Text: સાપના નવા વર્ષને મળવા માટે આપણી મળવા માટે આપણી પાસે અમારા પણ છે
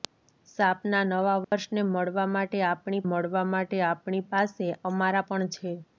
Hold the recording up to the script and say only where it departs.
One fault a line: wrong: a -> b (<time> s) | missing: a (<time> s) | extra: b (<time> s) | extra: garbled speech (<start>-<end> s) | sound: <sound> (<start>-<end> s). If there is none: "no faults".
sound: dropout (1.4-1.5 s)